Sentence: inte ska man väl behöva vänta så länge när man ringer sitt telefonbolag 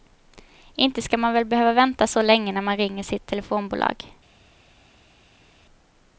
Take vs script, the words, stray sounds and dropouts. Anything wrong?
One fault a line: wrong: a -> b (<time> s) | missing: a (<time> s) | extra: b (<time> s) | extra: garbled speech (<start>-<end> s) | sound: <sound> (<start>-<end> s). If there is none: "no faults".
no faults